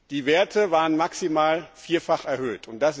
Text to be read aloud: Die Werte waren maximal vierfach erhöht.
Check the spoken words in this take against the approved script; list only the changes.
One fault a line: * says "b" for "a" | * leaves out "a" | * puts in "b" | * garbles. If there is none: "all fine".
all fine